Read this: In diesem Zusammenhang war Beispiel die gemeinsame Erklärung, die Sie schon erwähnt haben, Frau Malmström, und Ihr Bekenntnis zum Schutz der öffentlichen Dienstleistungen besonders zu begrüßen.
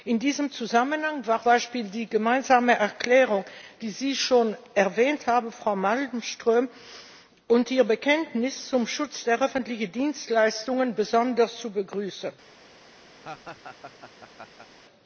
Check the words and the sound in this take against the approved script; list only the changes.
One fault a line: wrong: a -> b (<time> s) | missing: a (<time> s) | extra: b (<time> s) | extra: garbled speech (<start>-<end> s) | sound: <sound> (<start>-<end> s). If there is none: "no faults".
sound: laugh (13.2-14.7 s)